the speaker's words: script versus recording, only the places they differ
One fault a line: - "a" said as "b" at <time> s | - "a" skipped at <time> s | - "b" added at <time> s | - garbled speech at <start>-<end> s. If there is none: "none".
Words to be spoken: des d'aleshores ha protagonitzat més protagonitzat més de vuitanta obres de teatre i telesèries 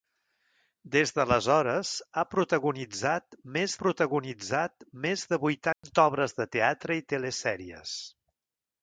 none